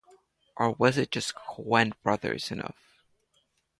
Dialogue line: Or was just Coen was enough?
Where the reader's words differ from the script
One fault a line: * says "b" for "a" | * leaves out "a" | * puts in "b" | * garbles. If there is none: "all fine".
* puts in "it"
* says "brothers" for "was"